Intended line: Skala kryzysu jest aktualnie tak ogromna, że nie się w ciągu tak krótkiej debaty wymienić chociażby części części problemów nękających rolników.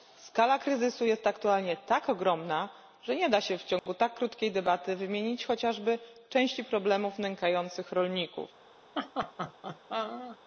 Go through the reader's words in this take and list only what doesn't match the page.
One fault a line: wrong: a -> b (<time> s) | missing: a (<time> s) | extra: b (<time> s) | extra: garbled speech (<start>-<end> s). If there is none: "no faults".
extra: da (3.3 s)
missing: części (6.6 s)